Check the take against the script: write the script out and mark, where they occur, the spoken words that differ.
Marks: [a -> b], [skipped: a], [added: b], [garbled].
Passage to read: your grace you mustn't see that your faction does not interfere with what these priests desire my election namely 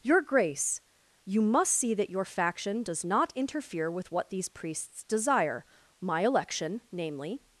your grace you [mustn't -> must] see that your faction does not interfere with what these priests desire my election namely